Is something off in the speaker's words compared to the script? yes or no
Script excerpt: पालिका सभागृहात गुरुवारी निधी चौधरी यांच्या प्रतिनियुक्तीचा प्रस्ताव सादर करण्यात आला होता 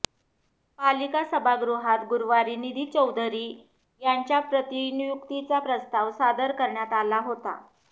no